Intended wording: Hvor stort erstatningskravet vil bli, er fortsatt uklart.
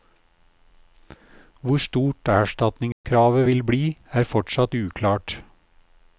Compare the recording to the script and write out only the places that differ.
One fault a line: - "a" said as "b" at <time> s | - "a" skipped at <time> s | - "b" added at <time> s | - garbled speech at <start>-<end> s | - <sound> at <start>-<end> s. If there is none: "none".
- dropout at 2.9-3.0 s